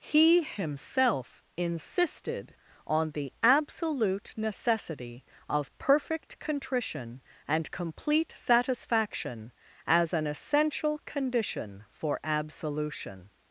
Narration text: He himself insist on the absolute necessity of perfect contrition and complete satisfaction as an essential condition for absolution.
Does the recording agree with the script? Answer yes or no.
no